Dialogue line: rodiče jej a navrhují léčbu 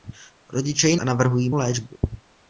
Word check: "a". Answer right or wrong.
right